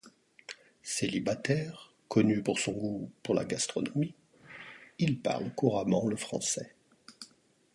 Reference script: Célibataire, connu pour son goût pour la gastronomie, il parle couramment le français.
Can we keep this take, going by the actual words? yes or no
yes